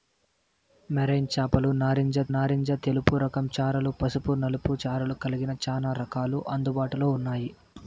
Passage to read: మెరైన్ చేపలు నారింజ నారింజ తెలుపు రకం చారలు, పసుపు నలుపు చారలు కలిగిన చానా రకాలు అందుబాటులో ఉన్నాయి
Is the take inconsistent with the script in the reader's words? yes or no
no